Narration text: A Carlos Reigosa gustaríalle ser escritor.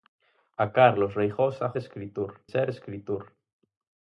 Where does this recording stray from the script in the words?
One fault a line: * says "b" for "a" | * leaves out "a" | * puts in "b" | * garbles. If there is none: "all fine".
* says "escritor" for "gustaríalle"